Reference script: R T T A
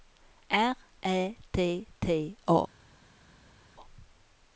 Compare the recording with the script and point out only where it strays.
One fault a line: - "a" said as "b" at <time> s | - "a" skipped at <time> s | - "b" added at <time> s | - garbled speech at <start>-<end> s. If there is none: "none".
- "Ä" added at 1.0 s